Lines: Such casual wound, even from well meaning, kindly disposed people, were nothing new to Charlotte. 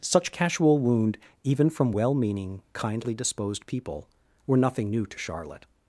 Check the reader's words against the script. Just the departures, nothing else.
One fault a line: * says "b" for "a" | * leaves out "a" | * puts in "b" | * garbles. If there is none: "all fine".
all fine